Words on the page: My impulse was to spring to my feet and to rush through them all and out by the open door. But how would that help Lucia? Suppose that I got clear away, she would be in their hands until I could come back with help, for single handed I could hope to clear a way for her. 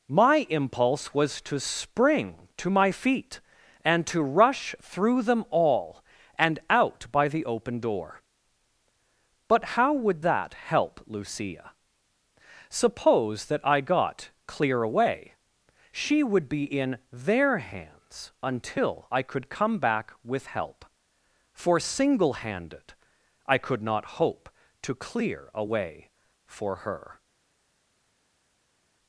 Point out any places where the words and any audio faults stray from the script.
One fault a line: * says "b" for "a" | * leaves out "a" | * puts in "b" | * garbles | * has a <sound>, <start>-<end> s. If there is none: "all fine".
* puts in "not"